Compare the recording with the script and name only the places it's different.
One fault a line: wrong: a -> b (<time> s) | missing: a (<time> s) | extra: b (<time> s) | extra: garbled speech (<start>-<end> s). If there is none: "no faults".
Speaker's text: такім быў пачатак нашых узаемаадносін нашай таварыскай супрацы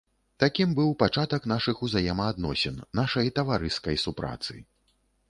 no faults